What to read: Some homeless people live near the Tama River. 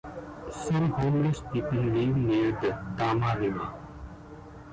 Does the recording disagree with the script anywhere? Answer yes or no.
no